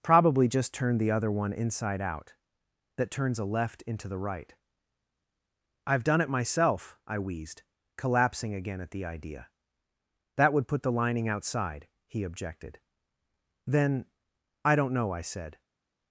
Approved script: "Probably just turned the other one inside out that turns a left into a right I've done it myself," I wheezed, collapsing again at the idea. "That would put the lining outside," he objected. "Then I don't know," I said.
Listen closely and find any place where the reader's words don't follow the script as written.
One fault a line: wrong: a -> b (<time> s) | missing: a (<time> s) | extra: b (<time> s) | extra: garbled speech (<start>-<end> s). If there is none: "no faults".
wrong: a -> the (4.1 s)